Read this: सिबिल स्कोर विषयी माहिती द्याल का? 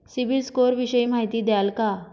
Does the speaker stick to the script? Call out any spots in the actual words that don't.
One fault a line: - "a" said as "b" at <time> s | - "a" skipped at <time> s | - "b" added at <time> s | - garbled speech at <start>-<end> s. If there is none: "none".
none